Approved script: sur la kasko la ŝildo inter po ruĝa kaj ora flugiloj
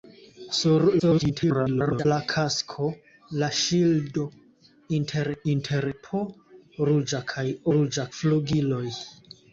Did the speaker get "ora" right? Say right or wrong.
wrong